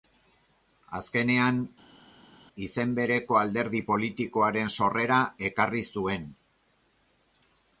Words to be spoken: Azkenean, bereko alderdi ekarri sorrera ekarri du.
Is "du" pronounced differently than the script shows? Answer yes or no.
yes